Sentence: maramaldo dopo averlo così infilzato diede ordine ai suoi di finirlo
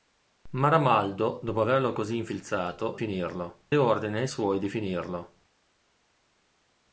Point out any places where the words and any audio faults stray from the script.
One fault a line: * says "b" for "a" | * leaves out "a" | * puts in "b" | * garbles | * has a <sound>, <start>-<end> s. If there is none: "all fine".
* says "finirlo" for "diede"